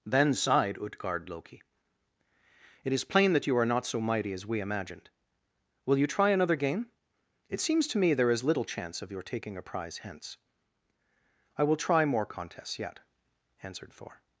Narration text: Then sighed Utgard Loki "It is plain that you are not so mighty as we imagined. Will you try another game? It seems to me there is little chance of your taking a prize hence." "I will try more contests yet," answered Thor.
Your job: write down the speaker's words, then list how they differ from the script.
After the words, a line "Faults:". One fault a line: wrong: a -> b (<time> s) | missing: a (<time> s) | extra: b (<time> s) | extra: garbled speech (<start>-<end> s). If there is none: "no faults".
Then sighed Utgard Loki "It is plain that you are not so mighty as we imagined. Will you try another game? It seems to me there is little chance of your taking a prize hence." "I will try more contests yet," answered Thor.
Faults:
no faults